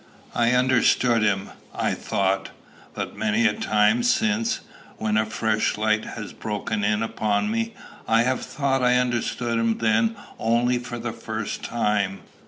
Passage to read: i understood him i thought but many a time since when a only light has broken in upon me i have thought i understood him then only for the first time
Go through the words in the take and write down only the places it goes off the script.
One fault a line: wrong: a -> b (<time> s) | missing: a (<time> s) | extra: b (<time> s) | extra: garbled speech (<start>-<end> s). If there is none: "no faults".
wrong: only -> fresh (5.3 s)